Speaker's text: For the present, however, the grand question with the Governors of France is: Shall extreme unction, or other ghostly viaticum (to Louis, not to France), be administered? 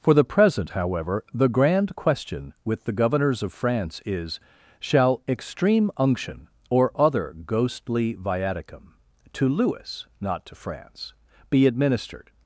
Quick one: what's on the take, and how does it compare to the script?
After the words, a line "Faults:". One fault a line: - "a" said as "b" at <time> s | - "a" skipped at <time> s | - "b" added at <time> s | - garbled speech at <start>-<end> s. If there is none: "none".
For the present, however, the grand question with the Governors of France is: Shall extreme unction, or other ghostly viaticum (to Louis, not to France), be administered?
Faults:
none